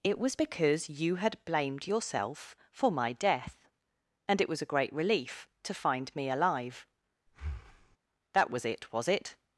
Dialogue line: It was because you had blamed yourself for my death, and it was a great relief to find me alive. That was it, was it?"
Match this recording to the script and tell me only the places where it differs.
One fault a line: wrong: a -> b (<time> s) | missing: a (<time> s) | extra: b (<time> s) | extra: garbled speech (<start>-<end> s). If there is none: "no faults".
no faults